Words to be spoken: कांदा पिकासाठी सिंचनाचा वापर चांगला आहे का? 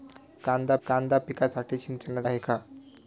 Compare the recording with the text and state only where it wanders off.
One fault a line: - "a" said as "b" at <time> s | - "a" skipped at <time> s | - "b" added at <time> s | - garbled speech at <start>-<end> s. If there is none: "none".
- "कांदा" added at 0.9 s
- "वापर चांगला" skipped at 2.3 s